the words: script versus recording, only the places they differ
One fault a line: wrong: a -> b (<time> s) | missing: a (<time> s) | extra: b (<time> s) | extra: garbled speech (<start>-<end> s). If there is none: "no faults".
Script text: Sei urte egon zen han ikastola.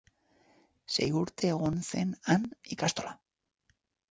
no faults